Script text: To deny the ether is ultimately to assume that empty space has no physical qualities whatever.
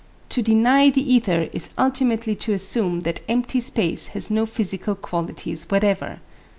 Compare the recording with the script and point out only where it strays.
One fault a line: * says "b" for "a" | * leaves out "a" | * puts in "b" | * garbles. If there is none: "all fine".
all fine